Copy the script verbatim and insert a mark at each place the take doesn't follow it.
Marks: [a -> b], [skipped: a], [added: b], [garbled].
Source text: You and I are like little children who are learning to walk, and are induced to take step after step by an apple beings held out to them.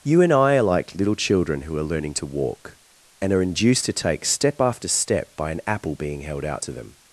You and I are like little children who are learning to walk, and are induced to take step after step by an apple [beings -> being] held out to them.